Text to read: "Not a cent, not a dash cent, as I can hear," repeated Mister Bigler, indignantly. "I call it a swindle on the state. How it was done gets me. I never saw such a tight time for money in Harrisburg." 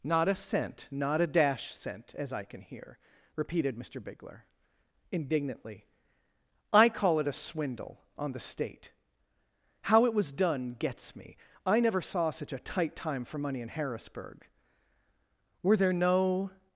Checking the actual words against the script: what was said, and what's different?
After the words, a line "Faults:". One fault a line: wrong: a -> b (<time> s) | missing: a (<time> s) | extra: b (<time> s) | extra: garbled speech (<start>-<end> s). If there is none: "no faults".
"Not a cent, not a dash cent, as I can hear," repeated Mister Bigler, indignantly. "I call it a swindle on the state. How it was done gets me. I never saw such a tight time for money in Harrisburg." "Were there no
Faults:
extra: Were there no (15.6 s)